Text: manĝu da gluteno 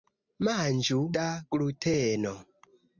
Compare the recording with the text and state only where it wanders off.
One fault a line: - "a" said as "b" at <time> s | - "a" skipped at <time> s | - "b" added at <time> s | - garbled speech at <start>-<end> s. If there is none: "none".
none